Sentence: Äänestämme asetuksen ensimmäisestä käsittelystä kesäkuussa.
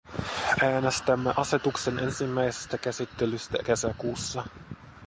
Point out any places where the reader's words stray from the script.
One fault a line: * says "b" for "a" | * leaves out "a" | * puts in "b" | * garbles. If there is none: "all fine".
all fine